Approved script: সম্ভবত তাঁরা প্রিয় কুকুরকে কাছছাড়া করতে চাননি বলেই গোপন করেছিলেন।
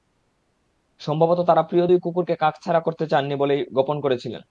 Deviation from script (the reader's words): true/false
true